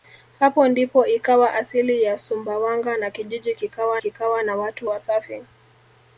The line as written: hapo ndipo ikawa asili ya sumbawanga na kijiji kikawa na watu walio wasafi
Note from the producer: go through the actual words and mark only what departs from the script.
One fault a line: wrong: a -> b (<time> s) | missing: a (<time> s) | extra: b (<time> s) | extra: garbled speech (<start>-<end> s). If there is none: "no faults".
extra: kikawa (4.0 s)
missing: walio (4.9 s)